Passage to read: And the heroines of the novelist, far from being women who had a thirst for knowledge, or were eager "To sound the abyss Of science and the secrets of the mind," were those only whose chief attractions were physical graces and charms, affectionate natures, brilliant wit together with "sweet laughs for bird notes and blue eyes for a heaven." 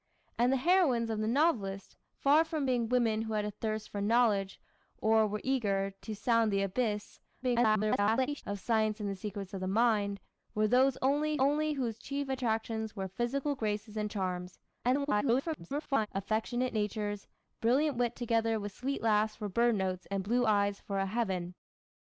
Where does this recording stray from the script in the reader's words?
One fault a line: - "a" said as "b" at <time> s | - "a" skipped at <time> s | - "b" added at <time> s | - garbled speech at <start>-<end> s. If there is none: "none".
- garbled speech at 7.4-8.4 s
- "only" added at 11.4 s
- garbled speech at 14.8-16.1 s